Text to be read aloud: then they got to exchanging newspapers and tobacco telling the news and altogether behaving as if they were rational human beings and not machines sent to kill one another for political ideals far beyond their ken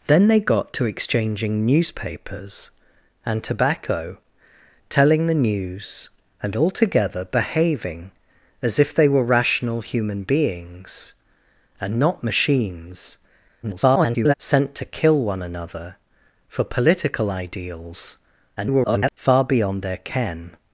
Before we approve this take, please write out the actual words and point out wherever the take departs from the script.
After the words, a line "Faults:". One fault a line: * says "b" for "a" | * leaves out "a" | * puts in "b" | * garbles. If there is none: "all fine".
then they got to exchanging newspapers and tobacco telling the news and altogether behaving as if they were rational human beings and not machines [garbled] sent to kill one another for political ideals [garbled] far beyond their ken
Faults:
* garbles
* garbles